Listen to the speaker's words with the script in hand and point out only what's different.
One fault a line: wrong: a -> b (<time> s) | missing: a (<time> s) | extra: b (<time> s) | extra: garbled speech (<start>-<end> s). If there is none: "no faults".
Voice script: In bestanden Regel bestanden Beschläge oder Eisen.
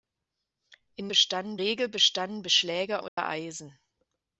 no faults